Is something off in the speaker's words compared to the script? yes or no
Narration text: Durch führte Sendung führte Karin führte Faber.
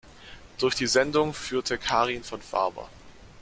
yes